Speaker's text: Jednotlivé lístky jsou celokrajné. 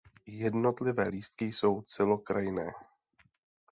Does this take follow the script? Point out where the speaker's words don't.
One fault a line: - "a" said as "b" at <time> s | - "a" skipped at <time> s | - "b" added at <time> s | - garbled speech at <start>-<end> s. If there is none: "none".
none